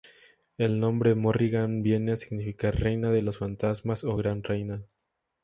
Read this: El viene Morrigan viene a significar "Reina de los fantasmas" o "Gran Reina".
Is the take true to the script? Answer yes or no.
no